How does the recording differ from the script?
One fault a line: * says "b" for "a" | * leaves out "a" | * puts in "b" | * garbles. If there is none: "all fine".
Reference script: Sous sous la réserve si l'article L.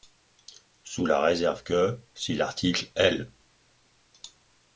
* leaves out "sous"
* puts in "que"